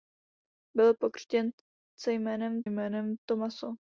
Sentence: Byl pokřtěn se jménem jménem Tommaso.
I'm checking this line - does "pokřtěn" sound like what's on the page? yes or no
yes